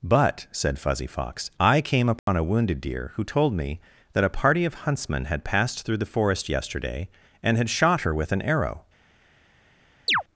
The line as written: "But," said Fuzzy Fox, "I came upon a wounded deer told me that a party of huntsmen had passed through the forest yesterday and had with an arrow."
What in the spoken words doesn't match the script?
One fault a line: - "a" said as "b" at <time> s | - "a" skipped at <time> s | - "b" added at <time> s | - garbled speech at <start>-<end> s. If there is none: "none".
- "who" added at 3.1 s
- "shot her" added at 7.7 s